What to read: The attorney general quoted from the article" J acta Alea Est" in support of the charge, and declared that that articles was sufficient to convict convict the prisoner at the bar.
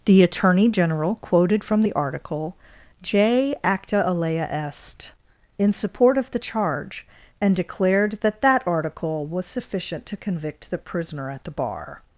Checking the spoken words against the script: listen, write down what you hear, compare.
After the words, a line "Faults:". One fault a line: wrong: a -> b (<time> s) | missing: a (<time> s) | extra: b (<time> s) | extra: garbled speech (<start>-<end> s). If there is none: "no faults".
The attorney general quoted from the article" J acta Alea Est" in support of the charge, and declared that that article was sufficient to convict the prisoner at the bar.
Faults:
wrong: articles -> article (8.6 s)
missing: convict (10.7 s)